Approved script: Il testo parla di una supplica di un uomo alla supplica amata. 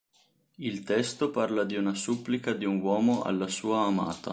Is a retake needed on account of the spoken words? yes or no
yes